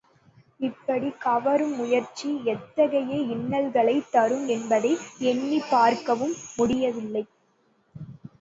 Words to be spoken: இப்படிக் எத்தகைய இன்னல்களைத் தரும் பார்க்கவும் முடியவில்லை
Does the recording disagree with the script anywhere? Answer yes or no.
yes